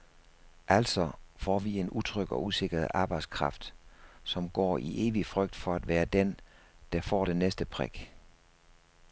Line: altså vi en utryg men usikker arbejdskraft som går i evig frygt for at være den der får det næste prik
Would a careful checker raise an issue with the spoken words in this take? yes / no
yes